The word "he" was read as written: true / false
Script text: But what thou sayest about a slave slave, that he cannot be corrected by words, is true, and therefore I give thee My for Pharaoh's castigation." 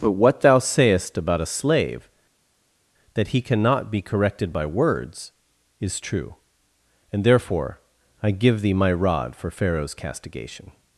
true